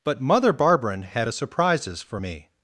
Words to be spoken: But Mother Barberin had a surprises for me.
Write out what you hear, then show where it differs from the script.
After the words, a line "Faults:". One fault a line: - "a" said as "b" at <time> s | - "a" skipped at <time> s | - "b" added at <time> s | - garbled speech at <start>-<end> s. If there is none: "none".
But Mother Barberin had a surprises for me.
Faults:
none